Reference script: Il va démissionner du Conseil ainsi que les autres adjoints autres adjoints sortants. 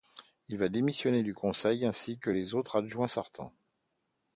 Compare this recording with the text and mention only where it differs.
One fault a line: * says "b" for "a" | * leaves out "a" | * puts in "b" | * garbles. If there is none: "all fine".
* leaves out "autres adjoints"